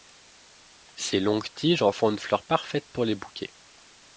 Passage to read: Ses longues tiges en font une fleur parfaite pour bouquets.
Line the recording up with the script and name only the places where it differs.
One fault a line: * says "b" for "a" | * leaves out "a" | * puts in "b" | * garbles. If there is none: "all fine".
* puts in "les"